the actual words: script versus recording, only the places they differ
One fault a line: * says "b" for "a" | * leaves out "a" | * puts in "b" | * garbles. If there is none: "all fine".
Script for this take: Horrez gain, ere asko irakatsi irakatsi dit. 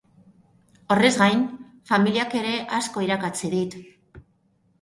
* puts in "familiak"
* leaves out "irakatsi"